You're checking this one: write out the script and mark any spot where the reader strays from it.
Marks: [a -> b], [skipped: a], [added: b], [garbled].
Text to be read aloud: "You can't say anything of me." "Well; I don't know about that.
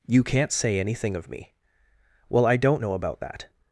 "You can't say anything of me." "Well; I don't know about that.